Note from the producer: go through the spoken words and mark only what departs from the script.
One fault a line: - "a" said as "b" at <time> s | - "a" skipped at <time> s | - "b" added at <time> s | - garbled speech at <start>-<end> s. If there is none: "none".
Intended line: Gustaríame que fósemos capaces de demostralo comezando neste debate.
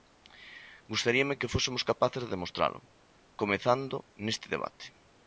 none